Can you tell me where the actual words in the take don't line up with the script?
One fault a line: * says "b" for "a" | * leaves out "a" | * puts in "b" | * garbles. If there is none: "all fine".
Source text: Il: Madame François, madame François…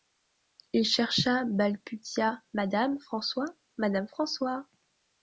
* puts in "chercha balbutia"